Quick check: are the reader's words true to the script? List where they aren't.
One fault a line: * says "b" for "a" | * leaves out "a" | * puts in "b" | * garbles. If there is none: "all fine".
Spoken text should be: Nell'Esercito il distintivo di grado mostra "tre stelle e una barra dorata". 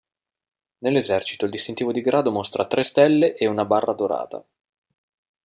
all fine